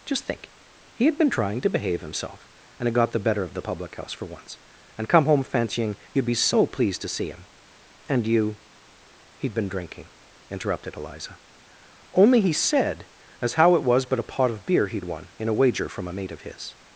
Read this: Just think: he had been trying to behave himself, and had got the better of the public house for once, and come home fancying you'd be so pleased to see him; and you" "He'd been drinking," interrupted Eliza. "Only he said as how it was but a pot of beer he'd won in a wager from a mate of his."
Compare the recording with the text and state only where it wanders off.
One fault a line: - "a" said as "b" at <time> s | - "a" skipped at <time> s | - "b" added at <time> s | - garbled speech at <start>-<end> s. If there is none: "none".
none